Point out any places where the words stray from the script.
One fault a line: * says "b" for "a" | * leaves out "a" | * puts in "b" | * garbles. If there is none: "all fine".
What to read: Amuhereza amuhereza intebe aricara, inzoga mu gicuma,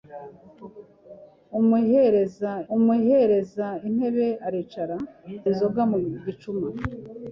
all fine